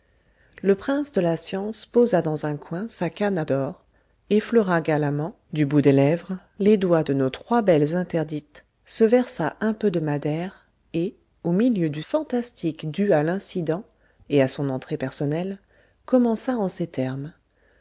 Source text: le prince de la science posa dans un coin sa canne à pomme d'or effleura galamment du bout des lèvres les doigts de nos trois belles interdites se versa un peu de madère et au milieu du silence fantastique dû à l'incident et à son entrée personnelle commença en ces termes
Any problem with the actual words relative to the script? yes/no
yes